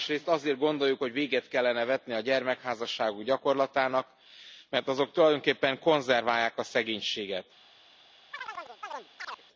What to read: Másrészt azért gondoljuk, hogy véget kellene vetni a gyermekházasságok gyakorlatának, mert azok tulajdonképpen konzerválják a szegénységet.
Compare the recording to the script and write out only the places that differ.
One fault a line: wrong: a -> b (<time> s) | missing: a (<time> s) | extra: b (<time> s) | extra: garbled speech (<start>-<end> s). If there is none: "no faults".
no faults